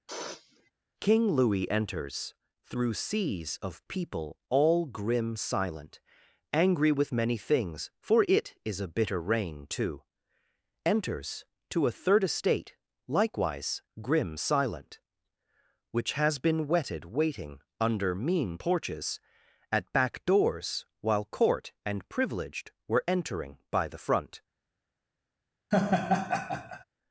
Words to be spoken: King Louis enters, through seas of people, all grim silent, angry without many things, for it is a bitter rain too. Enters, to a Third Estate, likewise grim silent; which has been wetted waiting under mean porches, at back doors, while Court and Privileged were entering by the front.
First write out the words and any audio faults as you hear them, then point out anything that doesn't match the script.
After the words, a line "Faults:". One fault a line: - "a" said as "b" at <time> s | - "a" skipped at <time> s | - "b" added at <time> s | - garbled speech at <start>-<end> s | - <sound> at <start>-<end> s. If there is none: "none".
King Louis enters, through seas of people, all grim silent, angry with many things, for it is a bitter rain too. Enters, to a Third Estate, likewise grim silent; which has been wetted waiting under mean porches, at back doors, while Court and Privileged were entering by the front.
Faults:
- sniff at 0.1-0.7 s
- "without" said as "with" at 6.9 s
- laugh at 25.7-26.8 s